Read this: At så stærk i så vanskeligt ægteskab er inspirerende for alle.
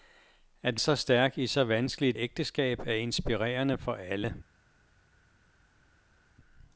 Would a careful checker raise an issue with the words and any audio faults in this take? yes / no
no